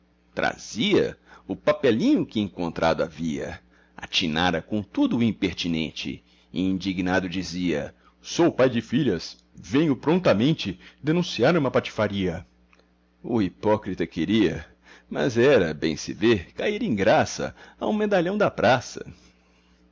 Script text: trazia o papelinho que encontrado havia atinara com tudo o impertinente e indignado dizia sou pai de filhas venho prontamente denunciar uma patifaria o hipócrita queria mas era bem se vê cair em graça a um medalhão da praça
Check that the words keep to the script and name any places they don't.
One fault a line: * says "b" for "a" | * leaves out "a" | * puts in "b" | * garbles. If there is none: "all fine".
all fine